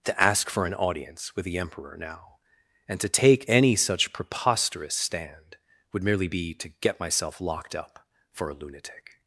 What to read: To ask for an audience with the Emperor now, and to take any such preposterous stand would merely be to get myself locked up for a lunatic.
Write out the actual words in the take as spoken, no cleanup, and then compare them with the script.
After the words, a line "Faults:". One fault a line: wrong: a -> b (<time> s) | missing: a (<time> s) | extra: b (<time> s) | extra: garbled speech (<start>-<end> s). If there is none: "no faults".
To ask for an audience with the Emperor now, and to take any such preposterous stand would merely be to get myself locked up for a lunatic.
Faults:
no faults